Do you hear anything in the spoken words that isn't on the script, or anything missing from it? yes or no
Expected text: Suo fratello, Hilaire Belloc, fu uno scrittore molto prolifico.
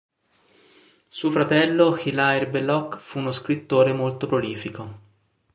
no